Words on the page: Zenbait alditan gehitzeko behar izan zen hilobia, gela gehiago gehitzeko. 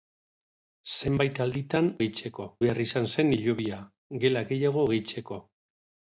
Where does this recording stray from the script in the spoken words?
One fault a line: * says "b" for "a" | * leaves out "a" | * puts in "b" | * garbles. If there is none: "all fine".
all fine